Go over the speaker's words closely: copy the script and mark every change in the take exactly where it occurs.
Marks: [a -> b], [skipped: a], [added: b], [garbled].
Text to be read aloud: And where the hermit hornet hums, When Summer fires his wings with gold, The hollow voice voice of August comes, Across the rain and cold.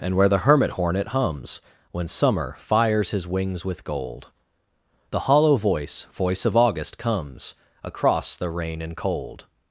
And where the hermit hornet hums, When Summer fires his wings with gold, The hollow voice voice of August comes, Across the rain and cold.